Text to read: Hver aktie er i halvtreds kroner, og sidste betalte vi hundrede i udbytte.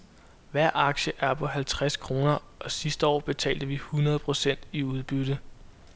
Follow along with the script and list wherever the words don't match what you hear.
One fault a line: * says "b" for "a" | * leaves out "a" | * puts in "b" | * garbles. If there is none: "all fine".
* says "på" for "i"
* puts in "år"
* puts in "procent"